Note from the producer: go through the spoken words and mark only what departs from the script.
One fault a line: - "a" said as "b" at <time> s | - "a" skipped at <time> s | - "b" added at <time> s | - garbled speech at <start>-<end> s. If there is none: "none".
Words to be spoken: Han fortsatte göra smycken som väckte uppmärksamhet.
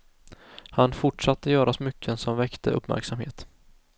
none